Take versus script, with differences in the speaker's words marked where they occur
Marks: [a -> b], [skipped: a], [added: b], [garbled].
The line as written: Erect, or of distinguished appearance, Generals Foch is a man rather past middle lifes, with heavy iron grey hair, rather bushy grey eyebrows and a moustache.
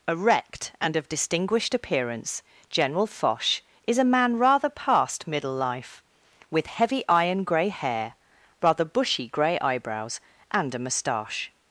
Erect, [or -> and] of distinguished appearance, [Generals -> General] Foch is a man rather past middle [lifes, -> life] with heavy iron grey hair, rather bushy grey eyebrows and a moustache.